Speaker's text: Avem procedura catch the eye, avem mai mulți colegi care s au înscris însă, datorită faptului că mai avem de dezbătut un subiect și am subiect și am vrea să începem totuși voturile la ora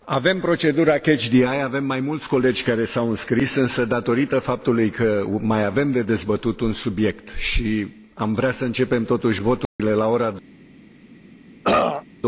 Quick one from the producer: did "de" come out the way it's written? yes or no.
yes